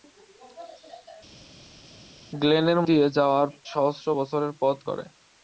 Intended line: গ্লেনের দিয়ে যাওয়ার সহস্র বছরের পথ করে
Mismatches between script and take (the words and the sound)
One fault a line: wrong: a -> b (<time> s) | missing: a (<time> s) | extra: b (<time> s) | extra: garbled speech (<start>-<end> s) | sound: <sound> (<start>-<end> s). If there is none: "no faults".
no faults